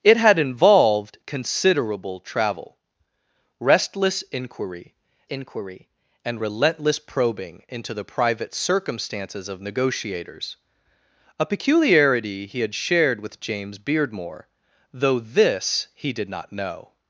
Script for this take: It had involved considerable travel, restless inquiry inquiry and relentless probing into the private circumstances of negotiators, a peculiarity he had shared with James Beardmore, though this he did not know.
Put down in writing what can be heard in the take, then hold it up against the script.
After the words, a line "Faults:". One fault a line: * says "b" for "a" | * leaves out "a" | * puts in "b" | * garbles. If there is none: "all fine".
It had involved considerable travel, restless inquiry inquiry and relentless probing into the private circumstances of negotiators, a peculiarity he had shared with James Beardmore, though this he did not know.
Faults:
all fine